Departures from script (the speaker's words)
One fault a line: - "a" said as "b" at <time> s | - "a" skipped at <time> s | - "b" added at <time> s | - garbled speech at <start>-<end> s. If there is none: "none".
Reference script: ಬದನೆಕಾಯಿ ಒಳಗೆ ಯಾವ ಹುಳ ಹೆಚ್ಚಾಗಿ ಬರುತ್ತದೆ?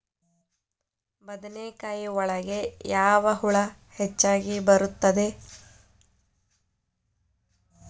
none